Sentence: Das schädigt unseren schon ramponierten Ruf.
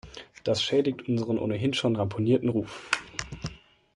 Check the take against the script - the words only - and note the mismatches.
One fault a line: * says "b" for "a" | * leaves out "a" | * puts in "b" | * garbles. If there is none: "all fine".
* puts in "ohnehin"